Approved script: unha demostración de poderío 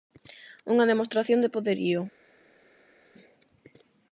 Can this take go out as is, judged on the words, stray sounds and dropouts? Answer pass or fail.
pass